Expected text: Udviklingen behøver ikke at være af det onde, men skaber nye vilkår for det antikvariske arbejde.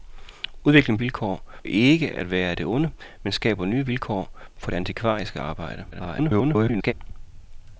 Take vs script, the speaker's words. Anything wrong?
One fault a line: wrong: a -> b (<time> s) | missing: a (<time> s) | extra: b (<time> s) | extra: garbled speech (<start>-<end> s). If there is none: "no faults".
wrong: behøver -> vilkår (1.0 s)
extra: garbled speech (5.9-6.9 s)